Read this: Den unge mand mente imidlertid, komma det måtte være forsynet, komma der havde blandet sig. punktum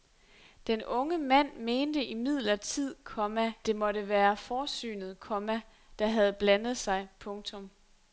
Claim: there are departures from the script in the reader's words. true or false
false